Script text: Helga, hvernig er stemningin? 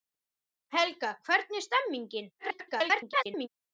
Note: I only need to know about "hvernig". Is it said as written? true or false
true